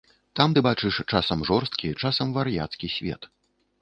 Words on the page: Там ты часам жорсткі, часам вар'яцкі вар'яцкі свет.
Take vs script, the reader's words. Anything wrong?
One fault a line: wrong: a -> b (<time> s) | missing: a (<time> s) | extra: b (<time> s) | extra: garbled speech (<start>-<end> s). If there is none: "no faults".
extra: бачыш (0.6 s)
missing: вар'яцкі (2.9 s)